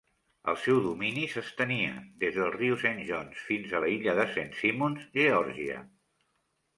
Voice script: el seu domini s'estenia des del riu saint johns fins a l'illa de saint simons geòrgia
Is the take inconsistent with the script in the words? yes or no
no